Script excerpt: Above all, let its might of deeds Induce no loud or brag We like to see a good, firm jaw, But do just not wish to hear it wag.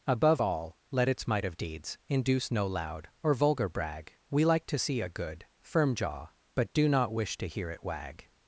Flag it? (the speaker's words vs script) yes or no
yes